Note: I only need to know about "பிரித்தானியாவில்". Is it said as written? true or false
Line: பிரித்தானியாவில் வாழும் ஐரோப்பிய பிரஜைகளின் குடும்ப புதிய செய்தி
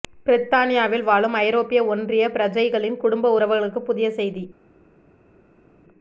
true